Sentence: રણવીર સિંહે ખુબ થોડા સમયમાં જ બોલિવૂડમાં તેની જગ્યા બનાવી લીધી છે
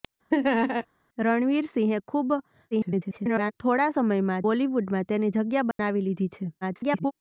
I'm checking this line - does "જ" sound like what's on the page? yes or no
no